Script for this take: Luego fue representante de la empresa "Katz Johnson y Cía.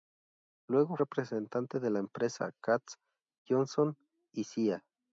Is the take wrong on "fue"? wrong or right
wrong